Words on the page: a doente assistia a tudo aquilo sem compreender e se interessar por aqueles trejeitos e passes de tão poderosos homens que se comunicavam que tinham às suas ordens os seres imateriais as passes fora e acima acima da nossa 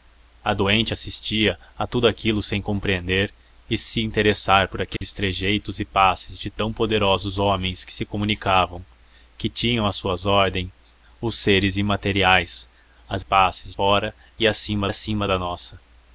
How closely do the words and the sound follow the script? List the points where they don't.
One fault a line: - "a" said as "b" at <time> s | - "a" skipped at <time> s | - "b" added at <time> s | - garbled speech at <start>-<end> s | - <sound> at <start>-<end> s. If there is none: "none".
- dropout at 5.0-5.0 s